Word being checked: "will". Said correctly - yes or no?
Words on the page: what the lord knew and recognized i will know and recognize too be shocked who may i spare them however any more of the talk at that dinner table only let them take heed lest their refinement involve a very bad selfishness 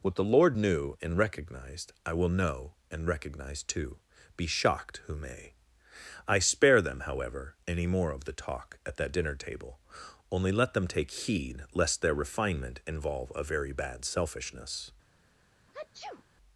yes